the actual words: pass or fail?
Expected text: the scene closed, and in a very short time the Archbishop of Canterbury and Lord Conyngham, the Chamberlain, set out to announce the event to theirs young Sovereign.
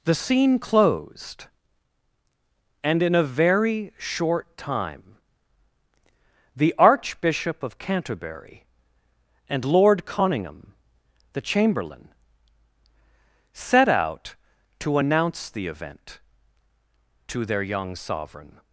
fail